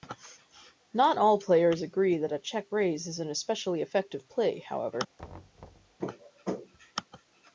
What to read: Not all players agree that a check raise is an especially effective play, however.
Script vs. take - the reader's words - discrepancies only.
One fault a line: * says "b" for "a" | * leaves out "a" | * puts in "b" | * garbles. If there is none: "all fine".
all fine